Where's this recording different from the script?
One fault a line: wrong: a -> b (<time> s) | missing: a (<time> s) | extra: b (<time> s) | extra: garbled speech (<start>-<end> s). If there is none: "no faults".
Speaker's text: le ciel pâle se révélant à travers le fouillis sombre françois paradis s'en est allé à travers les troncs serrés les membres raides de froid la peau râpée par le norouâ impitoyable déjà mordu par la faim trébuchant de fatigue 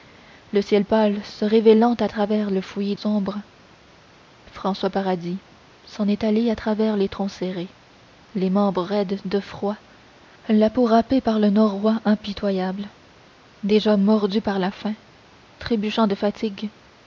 no faults